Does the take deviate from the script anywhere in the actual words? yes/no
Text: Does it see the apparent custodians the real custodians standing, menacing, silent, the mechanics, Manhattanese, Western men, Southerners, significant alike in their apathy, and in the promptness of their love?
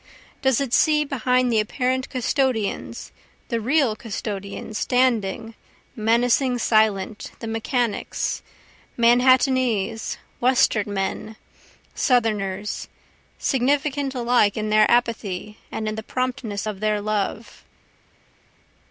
yes